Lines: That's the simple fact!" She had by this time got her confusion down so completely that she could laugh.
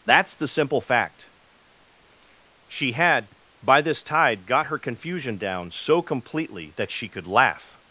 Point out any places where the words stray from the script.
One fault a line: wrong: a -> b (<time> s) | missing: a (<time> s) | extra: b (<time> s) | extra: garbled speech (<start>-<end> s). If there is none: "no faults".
wrong: time -> tide (4.0 s)